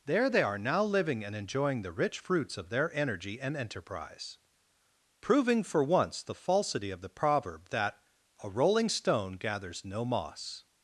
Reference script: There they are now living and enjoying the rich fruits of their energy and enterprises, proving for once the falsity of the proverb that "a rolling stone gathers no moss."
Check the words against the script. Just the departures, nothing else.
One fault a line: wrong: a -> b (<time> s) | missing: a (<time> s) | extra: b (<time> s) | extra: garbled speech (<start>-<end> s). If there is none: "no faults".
wrong: enterprises -> enterprise (3.6 s)